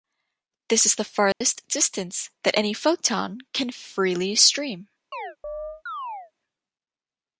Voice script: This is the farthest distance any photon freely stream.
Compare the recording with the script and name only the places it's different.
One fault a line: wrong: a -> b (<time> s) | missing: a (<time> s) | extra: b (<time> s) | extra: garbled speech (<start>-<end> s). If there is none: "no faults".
extra: that (2.4 s)
extra: can (3.5 s)